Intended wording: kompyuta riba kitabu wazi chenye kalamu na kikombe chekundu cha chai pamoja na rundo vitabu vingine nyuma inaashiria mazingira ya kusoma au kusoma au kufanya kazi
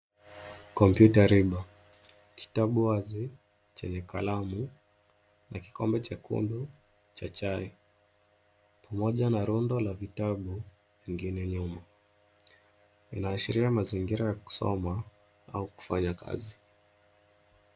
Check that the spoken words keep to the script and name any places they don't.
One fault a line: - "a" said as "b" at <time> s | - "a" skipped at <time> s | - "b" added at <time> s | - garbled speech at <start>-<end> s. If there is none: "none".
- "la" added at 9.8 s
- "kusoma au" skipped at 15.7 s